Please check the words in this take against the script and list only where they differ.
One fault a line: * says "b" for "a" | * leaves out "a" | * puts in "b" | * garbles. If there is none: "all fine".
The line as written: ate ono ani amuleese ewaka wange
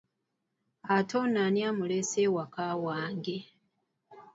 all fine